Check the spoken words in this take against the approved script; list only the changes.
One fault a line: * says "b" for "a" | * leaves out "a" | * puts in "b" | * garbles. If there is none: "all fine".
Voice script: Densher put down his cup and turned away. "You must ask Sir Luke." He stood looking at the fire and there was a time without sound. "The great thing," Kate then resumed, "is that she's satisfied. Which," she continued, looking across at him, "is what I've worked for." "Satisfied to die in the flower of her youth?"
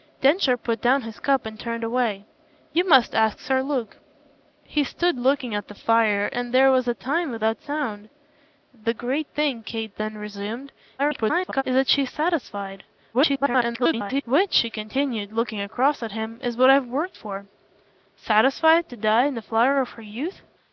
* garbles
* garbles